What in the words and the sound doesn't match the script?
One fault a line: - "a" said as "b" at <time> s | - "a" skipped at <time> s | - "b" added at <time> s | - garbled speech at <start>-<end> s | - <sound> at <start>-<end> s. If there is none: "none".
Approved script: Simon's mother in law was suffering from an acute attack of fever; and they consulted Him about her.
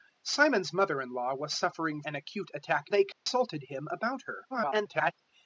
- "from" skipped at 2.0 s
- "of fever and" skipped at 2.9 s
- dropout at 3.1-3.3 s
- garbled speech at 4.5-5.1 s